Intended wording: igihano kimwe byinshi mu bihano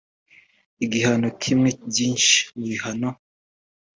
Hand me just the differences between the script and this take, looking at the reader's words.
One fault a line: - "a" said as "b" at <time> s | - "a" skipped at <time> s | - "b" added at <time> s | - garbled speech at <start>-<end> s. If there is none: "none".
none